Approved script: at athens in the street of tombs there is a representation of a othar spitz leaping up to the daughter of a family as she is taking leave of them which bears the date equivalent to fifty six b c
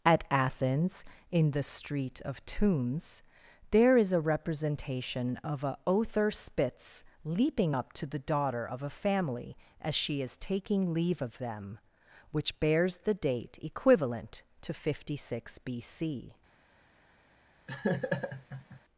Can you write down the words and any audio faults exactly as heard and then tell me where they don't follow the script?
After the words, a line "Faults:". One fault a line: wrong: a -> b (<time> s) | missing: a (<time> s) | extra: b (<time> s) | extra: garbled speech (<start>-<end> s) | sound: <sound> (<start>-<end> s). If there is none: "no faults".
at athens in the street of tombs there is a representation of a othar spitz leaping up to the daughter of a family as she is taking leave of them which bears the date equivalent to fifty six b c
Faults:
sound: laugh (17.7-18.8 s)